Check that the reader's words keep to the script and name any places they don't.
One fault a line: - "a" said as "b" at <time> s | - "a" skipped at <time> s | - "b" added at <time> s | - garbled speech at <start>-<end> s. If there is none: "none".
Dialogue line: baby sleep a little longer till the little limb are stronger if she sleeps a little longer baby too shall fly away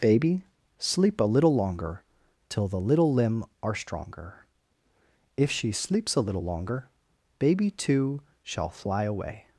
none